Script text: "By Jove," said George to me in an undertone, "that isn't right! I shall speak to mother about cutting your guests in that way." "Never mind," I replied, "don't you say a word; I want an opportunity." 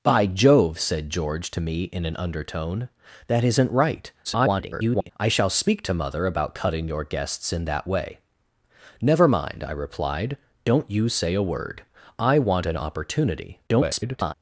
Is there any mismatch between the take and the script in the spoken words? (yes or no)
yes